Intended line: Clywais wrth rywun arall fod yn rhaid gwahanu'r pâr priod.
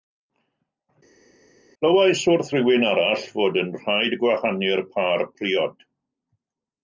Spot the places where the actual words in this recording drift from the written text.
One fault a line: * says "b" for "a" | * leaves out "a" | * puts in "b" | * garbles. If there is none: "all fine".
all fine